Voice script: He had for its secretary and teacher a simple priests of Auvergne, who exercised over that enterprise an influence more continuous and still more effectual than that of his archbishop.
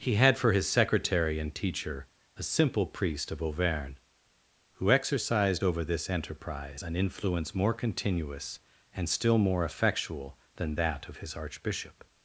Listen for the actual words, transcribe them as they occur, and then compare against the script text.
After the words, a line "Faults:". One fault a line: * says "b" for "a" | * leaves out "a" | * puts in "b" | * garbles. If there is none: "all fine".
He had for his secretary and teacher a simple priest of Auvergne, who exercised over this enterprise an influence more continuous and still more effectual than that of his archbishop.
Faults:
* says "his" for "its"
* says "priest" for "priests"
* says "this" for "that"